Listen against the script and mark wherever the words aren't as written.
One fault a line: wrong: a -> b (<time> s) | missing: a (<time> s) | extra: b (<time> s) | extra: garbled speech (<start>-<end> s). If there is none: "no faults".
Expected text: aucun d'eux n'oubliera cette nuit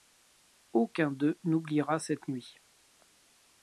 no faults